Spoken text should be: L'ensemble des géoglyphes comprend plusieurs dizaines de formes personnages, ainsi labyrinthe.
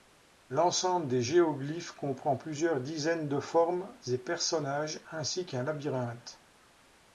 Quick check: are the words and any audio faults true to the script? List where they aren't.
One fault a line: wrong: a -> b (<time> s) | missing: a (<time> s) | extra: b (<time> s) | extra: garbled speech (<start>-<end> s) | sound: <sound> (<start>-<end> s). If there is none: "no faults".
extra: et (4.1 s)
extra: qu'un (5.4 s)